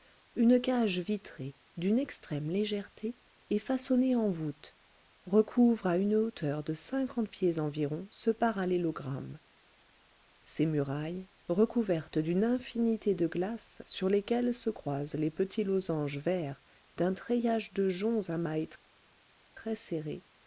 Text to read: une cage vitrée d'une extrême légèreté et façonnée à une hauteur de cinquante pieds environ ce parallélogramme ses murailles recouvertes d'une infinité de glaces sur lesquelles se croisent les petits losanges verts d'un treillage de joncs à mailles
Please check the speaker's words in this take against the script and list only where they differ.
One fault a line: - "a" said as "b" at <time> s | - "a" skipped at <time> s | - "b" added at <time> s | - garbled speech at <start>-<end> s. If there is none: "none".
- "en voûte recouvre" added at 4.2 s